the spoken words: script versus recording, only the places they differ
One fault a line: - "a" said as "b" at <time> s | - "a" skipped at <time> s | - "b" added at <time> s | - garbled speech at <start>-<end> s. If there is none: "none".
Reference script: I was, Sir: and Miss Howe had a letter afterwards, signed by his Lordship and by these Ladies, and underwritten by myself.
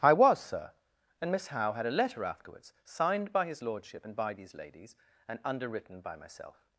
none